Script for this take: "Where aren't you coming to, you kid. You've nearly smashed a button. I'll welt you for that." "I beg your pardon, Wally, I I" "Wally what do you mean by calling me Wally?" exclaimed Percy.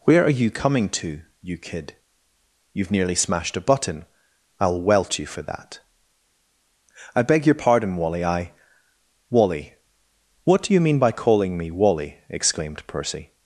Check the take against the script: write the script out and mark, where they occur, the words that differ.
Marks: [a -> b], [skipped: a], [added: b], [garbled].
"Where [aren't -> are] you coming to, you kid. You've nearly smashed a button. I'll welt you for that." "I beg your pardon, Wally, I [skipped: I"] "Wally what do you mean by calling me Wally?" exclaimed Percy.